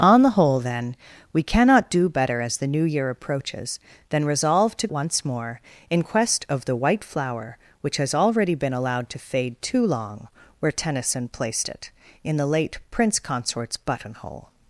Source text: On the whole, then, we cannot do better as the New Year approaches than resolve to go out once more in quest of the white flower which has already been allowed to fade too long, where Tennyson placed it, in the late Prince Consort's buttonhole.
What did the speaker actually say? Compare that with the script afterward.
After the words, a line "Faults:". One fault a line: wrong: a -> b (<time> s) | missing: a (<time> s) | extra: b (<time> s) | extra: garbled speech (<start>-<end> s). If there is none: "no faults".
On the whole, then, we cannot do better as the New Year approaches than resolve to once more in quest of the white flower which has already been allowed to fade too long, where Tennyson placed it, in the late Prince Consort's buttonhole.
Faults:
missing: go out (4.9 s)